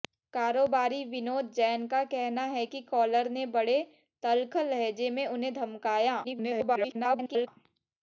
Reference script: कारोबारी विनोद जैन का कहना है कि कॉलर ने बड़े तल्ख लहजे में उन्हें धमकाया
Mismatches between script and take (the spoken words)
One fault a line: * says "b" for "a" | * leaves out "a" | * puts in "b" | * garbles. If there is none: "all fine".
* garbles